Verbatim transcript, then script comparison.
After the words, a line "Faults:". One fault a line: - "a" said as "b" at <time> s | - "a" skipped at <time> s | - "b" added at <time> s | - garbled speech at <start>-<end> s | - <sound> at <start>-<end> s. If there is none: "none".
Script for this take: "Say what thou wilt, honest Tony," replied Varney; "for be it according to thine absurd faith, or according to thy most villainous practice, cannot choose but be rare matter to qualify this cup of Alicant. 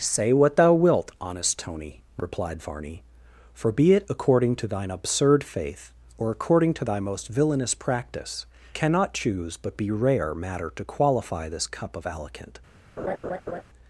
"Say what thou wilt, honest Tony," replied Varney; "for be it according to thine absurd faith, or according to thy most villainous practice, cannot choose but be rare matter to qualify this cup of Alicant.
Faults:
- laugh at 13.0-13.6 s